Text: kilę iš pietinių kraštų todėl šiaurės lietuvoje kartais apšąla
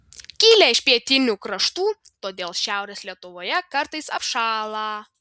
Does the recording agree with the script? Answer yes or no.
yes